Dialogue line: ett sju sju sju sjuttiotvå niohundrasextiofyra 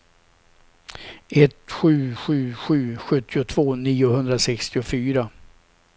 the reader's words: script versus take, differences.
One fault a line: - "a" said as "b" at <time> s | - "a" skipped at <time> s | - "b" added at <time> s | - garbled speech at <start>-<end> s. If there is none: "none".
none